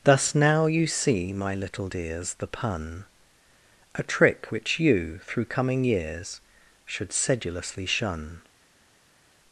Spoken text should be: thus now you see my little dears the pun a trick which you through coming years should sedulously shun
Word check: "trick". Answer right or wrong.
right